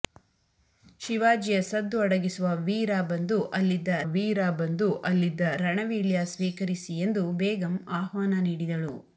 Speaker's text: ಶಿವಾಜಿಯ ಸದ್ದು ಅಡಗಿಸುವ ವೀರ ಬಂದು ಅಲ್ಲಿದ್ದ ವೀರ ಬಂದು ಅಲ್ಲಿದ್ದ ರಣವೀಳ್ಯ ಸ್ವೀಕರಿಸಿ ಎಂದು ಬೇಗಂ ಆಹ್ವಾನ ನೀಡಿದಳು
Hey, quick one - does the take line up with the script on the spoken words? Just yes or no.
yes